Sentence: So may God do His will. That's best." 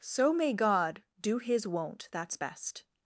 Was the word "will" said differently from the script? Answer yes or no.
yes